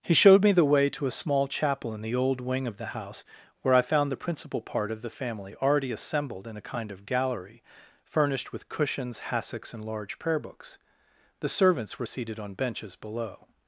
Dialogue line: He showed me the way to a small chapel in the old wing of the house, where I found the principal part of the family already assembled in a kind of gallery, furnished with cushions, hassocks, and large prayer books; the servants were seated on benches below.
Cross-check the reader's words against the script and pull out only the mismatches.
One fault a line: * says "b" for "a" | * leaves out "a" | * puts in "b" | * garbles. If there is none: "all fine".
all fine